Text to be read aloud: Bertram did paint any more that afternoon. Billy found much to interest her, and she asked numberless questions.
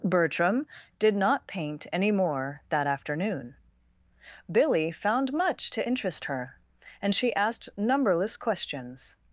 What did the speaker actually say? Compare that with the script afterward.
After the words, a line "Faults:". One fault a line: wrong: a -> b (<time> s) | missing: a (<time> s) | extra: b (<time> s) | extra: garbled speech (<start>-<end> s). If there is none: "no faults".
Bertram did not paint any more that afternoon. Billy found much to interest her, and she asked numberless questions.
Faults:
extra: not (1.1 s)